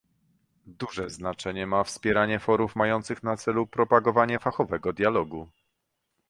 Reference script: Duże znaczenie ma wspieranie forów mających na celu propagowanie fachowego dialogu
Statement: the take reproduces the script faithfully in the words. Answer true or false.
true